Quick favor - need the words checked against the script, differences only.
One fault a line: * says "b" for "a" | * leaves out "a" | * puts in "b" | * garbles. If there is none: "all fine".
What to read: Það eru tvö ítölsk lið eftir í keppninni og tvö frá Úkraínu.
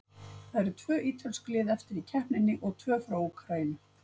all fine